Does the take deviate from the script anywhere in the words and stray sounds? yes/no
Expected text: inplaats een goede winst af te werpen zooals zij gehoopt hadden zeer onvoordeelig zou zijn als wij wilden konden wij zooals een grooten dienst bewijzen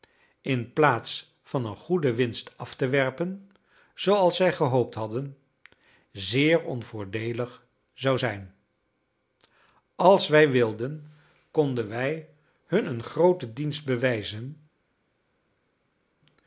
yes